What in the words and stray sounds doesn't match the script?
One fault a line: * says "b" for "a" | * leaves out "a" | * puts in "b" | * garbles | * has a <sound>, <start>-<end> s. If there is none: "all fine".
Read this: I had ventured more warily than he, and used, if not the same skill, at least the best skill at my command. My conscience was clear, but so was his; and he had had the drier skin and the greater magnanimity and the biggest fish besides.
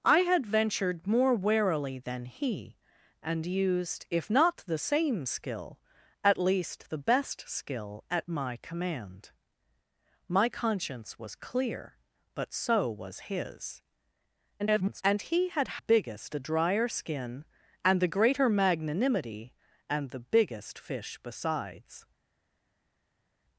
* garbles
* says "biggest" for "had"